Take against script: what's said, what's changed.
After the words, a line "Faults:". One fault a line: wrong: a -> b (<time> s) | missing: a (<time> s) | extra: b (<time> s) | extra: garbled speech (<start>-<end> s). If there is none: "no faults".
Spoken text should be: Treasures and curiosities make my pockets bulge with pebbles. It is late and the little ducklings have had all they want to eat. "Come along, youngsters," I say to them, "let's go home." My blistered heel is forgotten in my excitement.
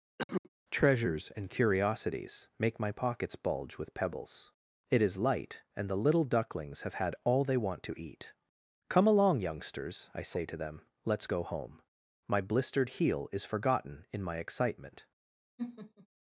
Treasures and curiosities make my pockets bulge with pebbles. It is light and the little ducklings have had all they want to eat. "Come along, youngsters," I say to them, "let's go home." My blistered heel is forgotten in my excitement.
Faults:
wrong: late -> light (5.2 s)